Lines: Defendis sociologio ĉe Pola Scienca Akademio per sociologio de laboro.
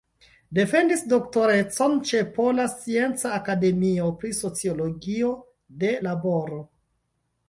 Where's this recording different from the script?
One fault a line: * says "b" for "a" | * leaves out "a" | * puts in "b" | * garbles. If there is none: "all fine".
* says "doktorecon" for "sociologio"
* says "pri" for "per"